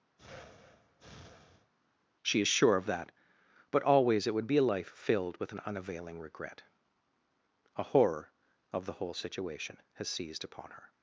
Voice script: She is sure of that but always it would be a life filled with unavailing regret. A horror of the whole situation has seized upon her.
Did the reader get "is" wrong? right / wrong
right